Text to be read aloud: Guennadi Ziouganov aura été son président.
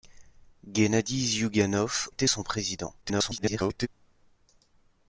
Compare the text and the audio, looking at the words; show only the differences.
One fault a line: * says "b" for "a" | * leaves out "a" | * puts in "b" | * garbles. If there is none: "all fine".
* leaves out "aura"
* garbles